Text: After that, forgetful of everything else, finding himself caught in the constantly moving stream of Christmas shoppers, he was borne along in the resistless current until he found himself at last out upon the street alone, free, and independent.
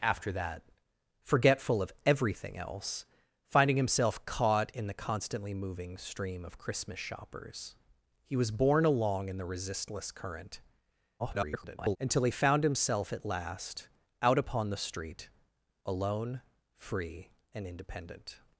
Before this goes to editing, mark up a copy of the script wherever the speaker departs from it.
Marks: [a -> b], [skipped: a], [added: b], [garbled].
After that, forgetful of everything else, finding himself caught in the constantly moving stream of Christmas shoppers, he was borne along in the resistless current [garbled] until he found himself at last out upon the street alone, free, and independent.